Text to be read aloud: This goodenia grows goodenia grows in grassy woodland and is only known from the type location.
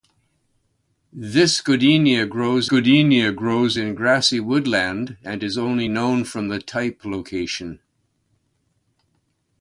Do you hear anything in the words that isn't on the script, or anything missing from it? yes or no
no